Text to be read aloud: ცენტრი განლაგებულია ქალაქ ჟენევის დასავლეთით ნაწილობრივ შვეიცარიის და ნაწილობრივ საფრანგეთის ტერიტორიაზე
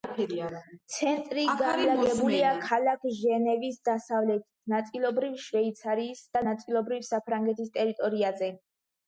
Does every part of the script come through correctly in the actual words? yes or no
yes